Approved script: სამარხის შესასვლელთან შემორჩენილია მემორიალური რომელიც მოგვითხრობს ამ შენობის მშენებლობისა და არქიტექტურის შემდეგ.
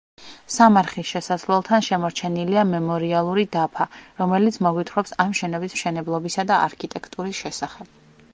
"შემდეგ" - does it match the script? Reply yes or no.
no